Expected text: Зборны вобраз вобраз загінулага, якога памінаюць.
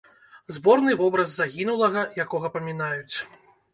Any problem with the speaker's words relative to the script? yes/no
yes